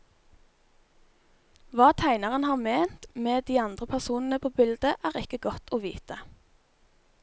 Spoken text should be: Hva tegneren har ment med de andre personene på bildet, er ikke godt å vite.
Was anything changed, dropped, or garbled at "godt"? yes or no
no